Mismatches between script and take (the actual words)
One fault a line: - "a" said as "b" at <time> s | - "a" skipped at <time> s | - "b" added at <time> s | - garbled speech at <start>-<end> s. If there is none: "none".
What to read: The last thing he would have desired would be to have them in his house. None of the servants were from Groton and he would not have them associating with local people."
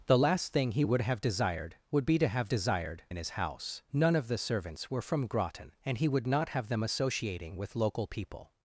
- "them" said as "desired" at 2.5 s